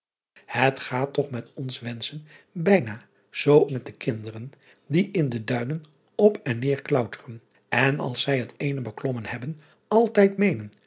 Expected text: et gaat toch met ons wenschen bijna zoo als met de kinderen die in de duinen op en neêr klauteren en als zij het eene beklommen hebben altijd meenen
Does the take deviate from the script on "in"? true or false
false